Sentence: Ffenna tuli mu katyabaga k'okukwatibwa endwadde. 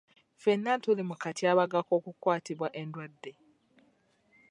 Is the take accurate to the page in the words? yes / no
yes